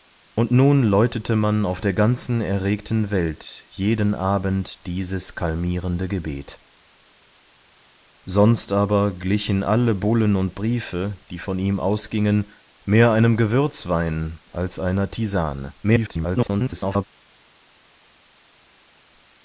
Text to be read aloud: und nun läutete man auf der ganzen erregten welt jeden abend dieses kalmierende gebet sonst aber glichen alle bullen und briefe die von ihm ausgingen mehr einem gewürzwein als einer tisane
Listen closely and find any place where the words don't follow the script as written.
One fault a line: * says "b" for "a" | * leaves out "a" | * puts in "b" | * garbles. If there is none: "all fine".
* garbles